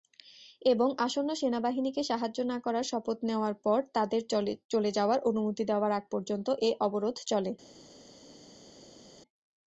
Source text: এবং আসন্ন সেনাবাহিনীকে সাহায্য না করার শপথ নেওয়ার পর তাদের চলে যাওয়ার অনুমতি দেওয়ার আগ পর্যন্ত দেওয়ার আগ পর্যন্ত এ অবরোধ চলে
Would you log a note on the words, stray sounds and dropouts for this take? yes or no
yes